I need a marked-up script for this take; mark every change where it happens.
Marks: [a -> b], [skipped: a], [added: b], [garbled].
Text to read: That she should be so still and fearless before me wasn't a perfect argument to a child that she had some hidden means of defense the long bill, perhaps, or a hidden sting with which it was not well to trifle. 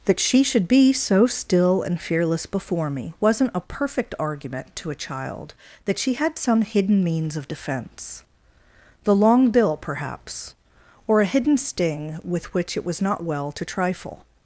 That she should be so still and fearless before me wasn't a perfect argument to a child that she had some hidden means of defense the long bill, perhaps, or a hidden sting with which it was not well to trifle.